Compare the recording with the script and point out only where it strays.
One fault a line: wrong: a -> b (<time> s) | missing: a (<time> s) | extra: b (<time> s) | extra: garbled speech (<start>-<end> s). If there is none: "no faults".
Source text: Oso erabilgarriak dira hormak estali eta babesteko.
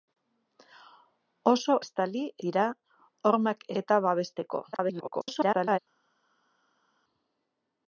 wrong: erabilgarriak -> estali (1.8 s)
missing: estali (3.7 s)
extra: garbled speech (4.7-5.8 s)